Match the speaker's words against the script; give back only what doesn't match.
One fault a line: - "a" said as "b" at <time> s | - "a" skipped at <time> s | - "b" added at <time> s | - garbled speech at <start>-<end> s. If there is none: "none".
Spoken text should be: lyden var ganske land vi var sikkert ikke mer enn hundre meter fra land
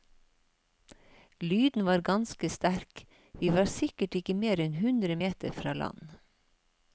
- "land" said as "sterk" at 2.5 s